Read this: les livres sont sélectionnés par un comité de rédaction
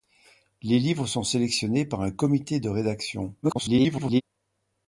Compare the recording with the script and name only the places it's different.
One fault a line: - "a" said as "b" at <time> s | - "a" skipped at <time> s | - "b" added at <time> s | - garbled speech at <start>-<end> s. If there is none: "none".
- garbled speech at 3.4-4.2 s